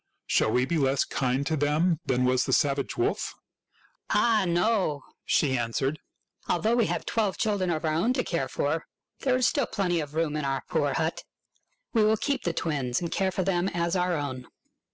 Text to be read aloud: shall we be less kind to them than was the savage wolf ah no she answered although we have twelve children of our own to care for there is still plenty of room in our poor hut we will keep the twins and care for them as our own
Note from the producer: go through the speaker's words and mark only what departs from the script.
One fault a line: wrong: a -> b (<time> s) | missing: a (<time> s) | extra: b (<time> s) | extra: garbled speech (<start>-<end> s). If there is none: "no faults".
no faults